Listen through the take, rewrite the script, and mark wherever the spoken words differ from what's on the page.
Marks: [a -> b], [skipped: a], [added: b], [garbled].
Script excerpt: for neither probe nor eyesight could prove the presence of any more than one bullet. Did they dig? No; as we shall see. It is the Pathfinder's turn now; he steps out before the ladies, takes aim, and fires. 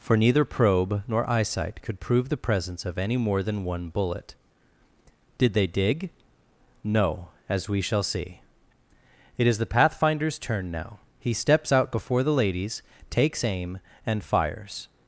for neither probe nor eyesight could prove the presence of any more than one bullet. Did they dig? No; as we shall see. It is the Pathfinder's turn now; he steps out before the ladies, takes aim, and fires.